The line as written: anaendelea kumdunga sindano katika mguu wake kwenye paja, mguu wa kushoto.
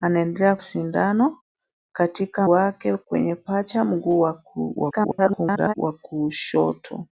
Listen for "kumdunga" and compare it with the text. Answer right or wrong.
wrong